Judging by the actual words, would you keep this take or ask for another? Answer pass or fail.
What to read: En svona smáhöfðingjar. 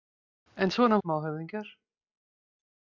pass